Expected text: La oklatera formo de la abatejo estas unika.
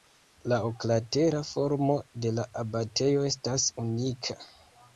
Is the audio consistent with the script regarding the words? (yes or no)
yes